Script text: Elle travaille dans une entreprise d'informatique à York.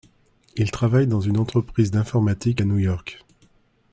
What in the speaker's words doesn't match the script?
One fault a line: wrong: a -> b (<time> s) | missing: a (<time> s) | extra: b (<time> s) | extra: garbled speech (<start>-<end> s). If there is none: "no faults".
wrong: Elle -> Il (0.6 s)
extra: New (2.7 s)